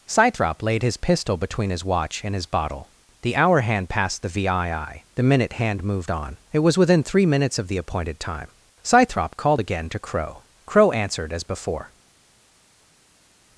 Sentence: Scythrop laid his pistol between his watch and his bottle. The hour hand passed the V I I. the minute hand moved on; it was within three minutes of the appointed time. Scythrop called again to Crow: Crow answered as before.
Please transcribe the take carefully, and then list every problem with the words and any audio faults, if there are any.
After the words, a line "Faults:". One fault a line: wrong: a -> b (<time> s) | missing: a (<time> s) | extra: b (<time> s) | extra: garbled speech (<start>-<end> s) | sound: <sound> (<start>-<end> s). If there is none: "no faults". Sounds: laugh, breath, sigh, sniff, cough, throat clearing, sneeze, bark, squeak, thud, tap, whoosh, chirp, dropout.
Scythrop laid his pistol between his watch and his bottle. The hour hand passed the V I I. the minute hand moved on; it was within three minutes of the appointed time. Scythrop called again to Crow: Crow answered as before.
Faults:
no faults